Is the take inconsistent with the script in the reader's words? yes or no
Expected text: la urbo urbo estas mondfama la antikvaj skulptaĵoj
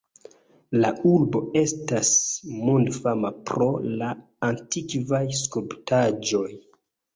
yes